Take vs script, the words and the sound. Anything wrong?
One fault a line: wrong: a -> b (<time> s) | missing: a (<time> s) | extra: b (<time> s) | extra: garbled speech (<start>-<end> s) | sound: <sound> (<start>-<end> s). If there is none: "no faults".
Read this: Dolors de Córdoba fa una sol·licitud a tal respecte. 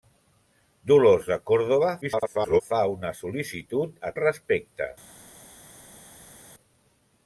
extra: garbled speech (2.0-2.6 s)
missing: tal (4.1 s)